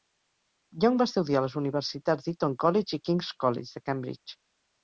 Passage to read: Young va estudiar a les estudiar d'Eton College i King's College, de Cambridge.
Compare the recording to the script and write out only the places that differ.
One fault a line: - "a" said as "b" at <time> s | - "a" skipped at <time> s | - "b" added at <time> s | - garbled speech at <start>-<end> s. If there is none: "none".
- "estudiar" said as "universitats" at 1.6 s